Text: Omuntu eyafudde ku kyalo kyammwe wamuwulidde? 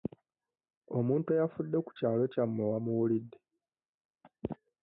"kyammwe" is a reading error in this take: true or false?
false